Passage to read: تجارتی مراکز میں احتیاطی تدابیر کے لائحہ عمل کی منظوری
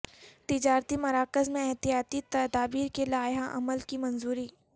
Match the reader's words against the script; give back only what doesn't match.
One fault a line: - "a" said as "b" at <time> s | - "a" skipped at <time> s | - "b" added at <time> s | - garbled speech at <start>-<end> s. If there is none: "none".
none